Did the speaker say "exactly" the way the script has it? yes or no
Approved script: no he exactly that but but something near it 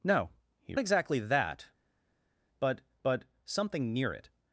yes